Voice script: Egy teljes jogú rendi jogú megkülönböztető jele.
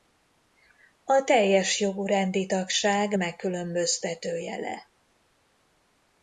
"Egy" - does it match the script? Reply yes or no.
no